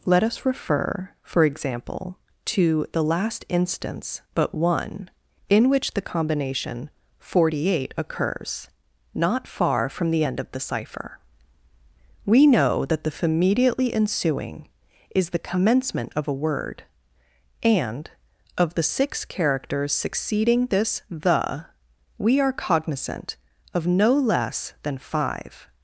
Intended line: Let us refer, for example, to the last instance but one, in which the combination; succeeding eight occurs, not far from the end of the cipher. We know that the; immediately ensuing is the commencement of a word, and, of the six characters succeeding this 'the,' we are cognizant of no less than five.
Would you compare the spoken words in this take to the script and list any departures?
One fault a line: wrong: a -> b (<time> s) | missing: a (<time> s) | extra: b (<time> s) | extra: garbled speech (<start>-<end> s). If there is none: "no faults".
wrong: succeeding -> forty (7.2 s)